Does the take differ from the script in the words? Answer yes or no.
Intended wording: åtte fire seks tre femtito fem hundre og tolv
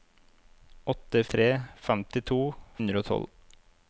yes